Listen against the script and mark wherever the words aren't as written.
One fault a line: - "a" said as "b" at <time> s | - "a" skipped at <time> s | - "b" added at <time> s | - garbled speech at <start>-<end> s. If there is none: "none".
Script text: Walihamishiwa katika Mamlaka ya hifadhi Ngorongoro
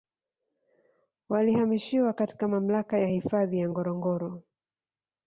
- "ya" added at 3.6 s